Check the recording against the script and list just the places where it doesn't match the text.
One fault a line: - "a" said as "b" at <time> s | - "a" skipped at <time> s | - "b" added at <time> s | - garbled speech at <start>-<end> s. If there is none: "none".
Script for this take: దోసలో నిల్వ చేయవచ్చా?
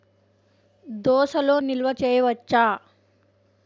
none